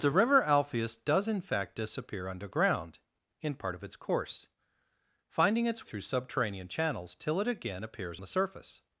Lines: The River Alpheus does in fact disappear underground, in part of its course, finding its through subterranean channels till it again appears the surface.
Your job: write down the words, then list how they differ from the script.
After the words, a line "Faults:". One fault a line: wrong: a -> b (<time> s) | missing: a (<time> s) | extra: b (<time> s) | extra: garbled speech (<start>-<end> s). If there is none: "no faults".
The River Alpheus does in fact disappear underground, in part of its course, finding its through subterranean channels till it again appears the surface.
Faults:
no faults